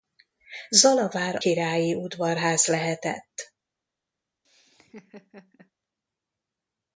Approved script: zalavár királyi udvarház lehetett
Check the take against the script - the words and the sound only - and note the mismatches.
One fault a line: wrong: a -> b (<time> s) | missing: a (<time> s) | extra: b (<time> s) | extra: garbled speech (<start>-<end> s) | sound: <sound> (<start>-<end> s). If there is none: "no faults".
sound: laugh (4.4-5.7 s)